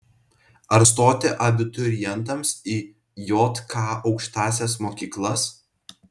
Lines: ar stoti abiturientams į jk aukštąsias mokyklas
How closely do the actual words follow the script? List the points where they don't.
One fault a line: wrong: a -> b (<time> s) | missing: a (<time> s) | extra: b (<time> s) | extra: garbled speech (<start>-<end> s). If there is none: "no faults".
no faults